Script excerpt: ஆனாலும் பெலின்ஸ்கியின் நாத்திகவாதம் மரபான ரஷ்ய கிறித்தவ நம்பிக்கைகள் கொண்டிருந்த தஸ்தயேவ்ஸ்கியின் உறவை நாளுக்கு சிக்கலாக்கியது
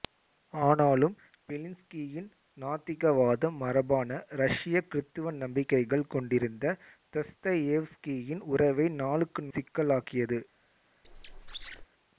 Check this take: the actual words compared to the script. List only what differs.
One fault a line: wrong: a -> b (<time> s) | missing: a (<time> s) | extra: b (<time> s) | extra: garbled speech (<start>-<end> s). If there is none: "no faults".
no faults